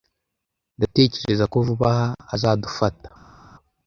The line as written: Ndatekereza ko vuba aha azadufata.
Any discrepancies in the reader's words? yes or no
no